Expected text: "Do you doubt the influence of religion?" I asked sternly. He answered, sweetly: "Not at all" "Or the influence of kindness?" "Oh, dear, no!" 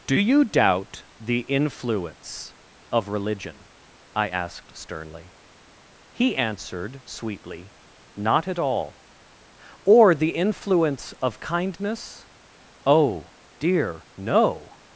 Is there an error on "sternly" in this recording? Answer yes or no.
no